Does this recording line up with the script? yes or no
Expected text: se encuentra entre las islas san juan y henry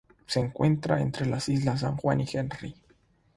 yes